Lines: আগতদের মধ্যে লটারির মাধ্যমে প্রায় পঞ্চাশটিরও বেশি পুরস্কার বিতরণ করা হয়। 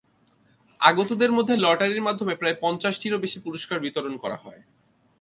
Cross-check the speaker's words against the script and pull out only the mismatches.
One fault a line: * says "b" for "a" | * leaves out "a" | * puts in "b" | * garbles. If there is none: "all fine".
all fine